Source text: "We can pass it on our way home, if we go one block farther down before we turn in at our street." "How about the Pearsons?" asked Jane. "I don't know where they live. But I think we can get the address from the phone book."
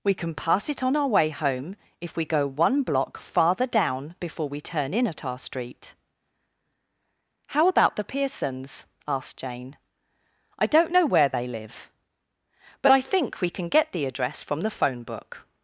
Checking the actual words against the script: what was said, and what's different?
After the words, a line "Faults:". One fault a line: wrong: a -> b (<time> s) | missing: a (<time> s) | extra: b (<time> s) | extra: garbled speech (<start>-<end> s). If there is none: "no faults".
"We can pass it on our way home, if we go one block farther down before we turn in at our street." "How about the Pearsons?" asked Jane. "I don't know where they live. But I think we can get the address from the phone book."
Faults:
no faults